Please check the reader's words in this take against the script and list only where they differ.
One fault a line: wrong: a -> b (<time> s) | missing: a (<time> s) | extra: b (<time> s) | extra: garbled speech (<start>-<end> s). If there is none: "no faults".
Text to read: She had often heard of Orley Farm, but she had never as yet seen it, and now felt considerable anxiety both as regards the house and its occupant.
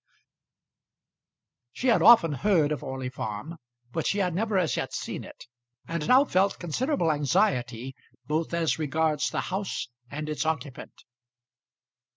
no faults